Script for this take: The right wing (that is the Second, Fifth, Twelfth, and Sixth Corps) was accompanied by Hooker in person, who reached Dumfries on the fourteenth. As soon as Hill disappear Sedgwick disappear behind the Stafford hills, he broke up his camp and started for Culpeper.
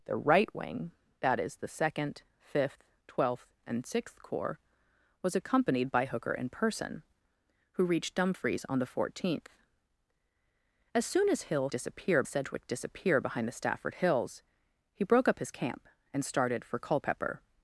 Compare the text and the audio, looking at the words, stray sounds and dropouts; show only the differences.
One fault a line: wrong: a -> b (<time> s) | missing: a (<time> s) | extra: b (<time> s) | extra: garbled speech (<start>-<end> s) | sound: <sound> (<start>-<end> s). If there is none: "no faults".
no faults